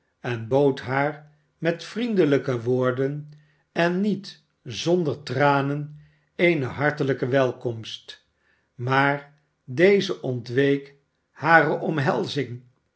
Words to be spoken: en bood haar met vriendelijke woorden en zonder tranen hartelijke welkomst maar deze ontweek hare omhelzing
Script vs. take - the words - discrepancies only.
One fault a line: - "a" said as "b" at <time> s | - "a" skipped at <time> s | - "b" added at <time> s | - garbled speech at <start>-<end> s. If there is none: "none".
- "niet" added at 4.0 s
- "eene" added at 6.3 s